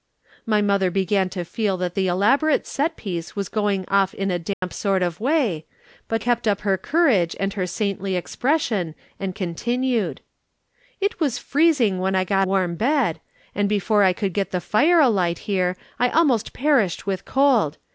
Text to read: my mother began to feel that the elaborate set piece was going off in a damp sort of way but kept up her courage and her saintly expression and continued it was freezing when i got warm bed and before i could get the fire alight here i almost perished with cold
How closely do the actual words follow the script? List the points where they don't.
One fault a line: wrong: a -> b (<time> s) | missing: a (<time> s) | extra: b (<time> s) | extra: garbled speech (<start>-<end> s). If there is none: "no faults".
no faults